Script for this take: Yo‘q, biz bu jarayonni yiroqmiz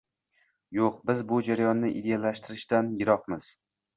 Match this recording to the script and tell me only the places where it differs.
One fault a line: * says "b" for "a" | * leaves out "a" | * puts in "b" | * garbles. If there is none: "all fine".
* puts in "ideallashtirishdan"